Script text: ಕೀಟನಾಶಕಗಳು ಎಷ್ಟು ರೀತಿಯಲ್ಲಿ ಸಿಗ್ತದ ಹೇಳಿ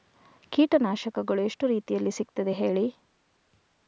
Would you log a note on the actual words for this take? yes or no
no